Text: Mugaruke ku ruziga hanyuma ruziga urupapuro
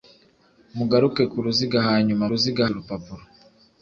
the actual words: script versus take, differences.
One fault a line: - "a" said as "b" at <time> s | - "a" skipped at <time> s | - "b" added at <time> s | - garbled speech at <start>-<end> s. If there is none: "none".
none